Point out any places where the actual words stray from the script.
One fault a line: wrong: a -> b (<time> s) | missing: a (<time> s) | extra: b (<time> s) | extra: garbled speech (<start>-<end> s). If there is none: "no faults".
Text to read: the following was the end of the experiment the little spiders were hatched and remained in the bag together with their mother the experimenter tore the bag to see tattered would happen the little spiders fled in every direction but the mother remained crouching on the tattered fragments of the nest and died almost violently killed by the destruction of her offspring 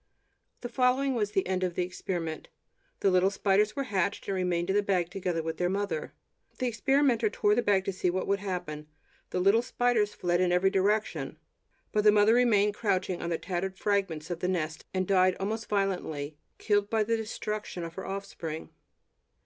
wrong: tattered -> what (8.1 s)